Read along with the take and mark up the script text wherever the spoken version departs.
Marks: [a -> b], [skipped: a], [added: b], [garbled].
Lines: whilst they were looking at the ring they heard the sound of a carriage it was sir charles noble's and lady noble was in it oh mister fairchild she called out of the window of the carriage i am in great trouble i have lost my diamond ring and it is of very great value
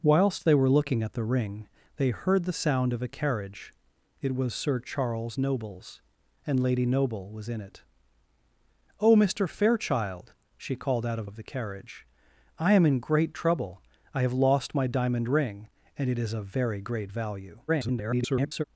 whilst they were looking at the ring they heard the sound of a carriage it was sir charles noble's and lady noble was in it oh mister fairchild she called out of [skipped: the window] of the carriage i am in great trouble i have lost my diamond ring and it is of very great value [garbled]